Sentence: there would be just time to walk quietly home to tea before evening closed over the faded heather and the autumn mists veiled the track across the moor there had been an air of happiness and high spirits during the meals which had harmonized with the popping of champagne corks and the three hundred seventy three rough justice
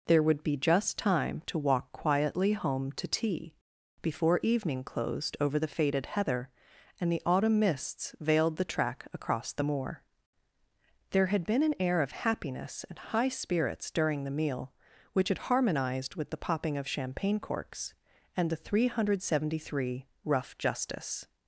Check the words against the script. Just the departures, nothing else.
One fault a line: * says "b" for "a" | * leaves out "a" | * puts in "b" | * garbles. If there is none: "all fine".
* says "meal" for "meals"